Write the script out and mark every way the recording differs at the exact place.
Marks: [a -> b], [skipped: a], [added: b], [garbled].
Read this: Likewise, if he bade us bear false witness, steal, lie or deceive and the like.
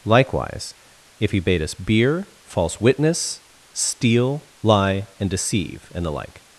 Likewise, if he bade us [bear -> beer] false witness, steal, lie [or -> and] deceive and the like.